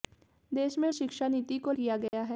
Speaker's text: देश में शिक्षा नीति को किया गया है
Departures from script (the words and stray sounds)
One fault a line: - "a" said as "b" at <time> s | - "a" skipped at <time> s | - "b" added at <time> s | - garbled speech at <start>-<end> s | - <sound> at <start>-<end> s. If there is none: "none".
- dropout at 2.1-2.1 s